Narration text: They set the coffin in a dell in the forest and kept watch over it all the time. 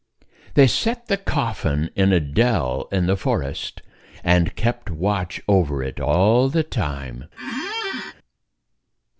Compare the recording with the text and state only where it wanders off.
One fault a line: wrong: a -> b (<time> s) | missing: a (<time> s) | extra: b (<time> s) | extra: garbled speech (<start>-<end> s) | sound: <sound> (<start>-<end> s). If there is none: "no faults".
sound: squeak (7.4-8.1 s)